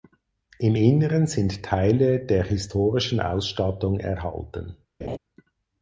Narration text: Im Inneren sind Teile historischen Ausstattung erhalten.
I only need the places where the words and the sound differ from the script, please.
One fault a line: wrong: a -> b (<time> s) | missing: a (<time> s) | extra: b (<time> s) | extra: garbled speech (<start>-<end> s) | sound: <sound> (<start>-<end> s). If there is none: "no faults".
extra: der (2.2 s)
sound: laugh (5.0-5.2 s)